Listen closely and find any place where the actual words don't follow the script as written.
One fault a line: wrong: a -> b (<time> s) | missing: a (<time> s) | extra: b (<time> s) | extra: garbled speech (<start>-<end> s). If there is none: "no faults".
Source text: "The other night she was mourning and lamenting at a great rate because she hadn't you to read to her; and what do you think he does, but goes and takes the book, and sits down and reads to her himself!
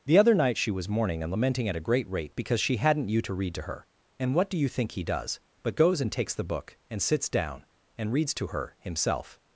no faults